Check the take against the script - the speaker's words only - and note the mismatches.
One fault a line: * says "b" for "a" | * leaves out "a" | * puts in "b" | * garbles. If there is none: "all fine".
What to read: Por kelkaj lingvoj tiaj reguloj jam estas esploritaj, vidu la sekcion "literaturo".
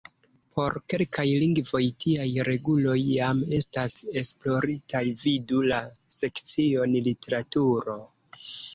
all fine